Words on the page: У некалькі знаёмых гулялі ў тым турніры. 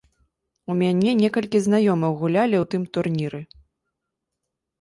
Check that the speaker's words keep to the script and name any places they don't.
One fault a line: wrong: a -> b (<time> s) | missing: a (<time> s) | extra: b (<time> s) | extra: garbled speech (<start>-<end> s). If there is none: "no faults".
extra: мяне (0.8 s)